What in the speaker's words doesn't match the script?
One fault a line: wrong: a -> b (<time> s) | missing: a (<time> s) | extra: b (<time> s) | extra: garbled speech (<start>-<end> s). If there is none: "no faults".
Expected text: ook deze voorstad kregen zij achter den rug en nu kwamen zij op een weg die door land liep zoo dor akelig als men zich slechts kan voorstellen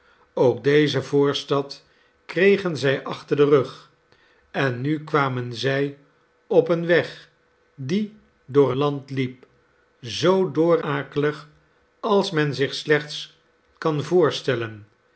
no faults